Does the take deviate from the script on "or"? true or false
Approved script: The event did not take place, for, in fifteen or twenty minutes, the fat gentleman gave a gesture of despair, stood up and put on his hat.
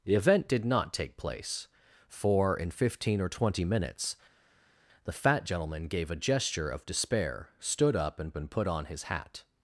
false